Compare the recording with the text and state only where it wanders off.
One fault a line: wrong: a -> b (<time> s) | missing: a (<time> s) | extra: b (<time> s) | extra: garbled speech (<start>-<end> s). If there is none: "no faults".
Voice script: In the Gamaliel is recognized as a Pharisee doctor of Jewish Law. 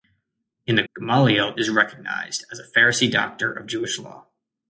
no faults